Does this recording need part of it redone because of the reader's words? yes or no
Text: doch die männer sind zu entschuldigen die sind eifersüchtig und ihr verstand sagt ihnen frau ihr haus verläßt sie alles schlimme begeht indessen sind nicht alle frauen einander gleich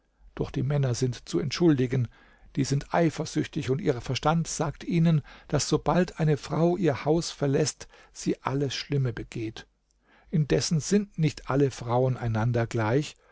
yes